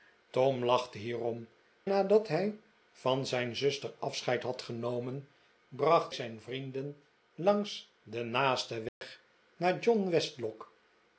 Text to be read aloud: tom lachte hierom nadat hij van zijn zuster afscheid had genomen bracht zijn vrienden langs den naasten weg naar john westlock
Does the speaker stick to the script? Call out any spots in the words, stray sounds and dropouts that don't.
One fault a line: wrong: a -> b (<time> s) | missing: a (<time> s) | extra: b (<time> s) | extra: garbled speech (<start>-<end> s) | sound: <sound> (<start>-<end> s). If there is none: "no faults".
sound: dropout (8.9-9.0 s)